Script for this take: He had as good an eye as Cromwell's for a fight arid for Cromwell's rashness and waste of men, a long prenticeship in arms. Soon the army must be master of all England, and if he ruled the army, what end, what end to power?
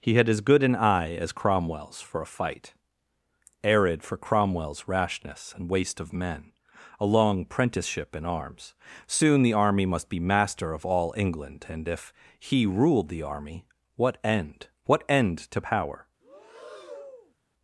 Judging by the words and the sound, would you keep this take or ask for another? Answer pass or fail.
fail